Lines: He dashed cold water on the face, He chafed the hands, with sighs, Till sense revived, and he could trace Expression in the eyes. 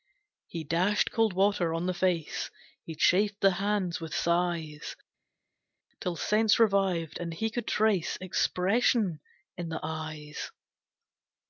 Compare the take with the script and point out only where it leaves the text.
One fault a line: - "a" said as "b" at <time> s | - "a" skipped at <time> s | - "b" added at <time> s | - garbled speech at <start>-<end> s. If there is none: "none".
none